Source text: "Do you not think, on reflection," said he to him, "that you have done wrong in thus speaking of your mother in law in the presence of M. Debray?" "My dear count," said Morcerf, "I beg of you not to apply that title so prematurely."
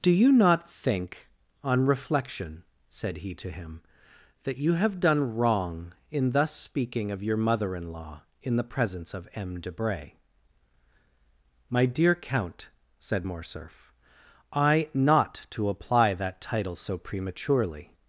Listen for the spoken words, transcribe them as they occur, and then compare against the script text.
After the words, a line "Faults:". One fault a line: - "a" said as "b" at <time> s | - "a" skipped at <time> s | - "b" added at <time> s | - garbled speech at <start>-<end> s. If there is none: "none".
"Do you not think, on reflection," said he to him, "that you have done wrong in thus speaking of your mother in law in the presence of M. Debray?" "My dear count," said Morcerf, "I not to apply that title so prematurely."
Faults:
- "beg of you" skipped at 14.9 s